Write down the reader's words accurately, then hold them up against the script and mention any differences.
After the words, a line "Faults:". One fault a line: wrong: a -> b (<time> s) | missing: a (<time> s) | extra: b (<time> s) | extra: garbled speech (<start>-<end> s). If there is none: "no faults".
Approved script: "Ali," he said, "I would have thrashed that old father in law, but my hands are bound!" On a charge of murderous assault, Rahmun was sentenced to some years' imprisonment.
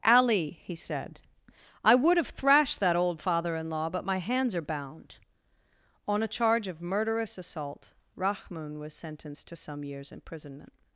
"Ali," he said, "I would have thrashed that old father in law, but my hands are bound!" On a charge of murderous assault, Rahmun was sentenced to some years' imprisonment.
Faults:
no faults